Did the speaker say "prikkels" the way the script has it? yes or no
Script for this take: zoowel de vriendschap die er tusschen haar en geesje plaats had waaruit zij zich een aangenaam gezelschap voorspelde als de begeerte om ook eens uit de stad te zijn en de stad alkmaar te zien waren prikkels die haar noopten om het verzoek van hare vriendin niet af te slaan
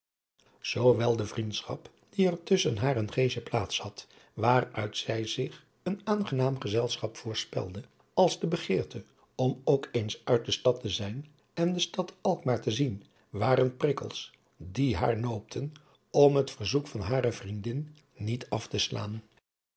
yes